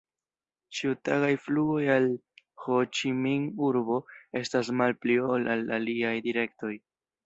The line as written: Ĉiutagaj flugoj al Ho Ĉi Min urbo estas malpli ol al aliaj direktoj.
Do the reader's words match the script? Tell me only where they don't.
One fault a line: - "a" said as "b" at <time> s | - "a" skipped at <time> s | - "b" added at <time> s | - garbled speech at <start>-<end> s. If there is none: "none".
none